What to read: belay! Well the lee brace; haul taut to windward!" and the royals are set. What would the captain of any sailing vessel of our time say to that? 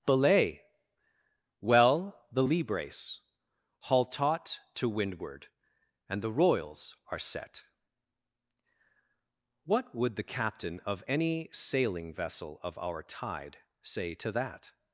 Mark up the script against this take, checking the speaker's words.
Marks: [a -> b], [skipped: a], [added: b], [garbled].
belay! Well the lee brace; haul taut to windward!" and the royals are set. What would the captain of any sailing vessel of our [time -> tide] say to that?